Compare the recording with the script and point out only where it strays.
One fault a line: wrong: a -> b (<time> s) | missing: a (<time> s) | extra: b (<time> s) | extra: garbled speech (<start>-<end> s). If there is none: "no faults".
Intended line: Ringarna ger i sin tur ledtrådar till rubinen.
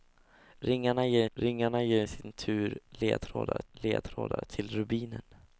extra: ringarna ger (1.3 s)
extra: ledtrådar (3.7 s)